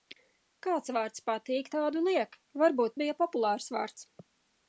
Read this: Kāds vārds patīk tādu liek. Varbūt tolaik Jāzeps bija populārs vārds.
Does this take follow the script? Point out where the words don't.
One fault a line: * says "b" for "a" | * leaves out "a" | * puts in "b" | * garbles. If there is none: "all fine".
* leaves out "tolaik Jāzeps"